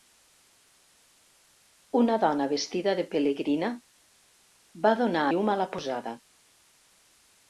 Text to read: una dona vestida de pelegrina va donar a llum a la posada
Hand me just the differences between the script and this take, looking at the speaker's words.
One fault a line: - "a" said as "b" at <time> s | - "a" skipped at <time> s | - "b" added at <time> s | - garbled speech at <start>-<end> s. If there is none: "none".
- "a" skipped at 5.3 s